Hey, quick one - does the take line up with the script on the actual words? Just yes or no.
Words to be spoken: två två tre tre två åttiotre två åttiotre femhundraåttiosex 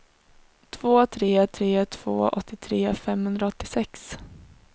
no